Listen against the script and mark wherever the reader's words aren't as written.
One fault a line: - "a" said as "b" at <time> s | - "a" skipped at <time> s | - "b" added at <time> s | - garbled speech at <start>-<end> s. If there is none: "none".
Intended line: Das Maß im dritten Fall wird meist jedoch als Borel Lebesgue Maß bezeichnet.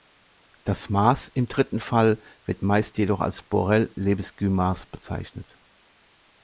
none